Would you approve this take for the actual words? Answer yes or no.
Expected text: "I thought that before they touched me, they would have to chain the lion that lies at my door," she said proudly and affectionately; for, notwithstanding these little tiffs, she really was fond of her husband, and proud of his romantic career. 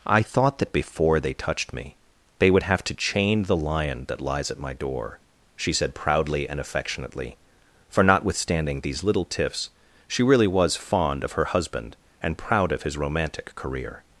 yes